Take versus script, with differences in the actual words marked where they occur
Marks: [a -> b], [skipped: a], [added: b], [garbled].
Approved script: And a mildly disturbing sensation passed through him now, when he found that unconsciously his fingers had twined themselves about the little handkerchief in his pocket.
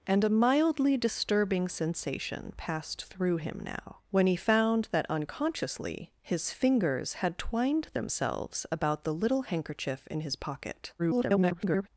And a mildly disturbing sensation passed through him now, when he found that unconsciously his fingers had twined themselves about the little handkerchief in his pocket. [garbled]